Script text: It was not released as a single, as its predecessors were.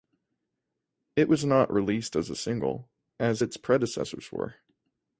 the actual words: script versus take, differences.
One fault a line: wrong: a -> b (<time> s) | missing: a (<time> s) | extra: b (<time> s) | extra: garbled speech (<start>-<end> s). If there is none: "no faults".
no faults